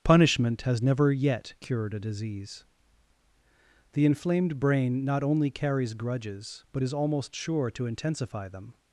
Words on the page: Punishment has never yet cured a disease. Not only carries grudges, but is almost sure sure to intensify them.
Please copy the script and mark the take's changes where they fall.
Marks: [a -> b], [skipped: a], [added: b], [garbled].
Punishment has never yet cured a disease. [added: The inflamed brain] Not only carries grudges, but is almost sure [skipped: sure] to intensify them.